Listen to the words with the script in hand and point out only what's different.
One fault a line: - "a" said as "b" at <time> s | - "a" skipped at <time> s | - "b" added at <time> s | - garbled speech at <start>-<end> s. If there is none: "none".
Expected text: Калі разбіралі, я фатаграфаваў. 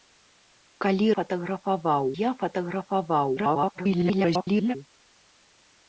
- "разбіралі" said as "фатаграфаваў" at 1.2 s
- garbled speech at 3.4-4.8 s